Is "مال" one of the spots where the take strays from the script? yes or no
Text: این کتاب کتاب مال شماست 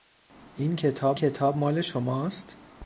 no